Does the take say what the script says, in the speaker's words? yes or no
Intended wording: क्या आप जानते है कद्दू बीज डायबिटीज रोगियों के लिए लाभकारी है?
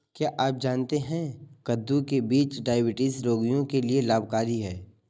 no